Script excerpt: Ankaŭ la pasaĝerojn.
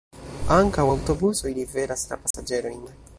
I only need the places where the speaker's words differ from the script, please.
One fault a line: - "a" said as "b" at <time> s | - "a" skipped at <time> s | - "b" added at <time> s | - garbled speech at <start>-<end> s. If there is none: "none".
- "aŭtobusoj liveras" added at 0.9 s